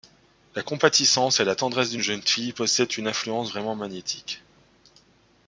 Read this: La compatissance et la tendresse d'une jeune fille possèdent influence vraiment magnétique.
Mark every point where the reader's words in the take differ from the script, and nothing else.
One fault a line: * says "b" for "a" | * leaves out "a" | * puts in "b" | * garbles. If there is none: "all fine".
* puts in "une"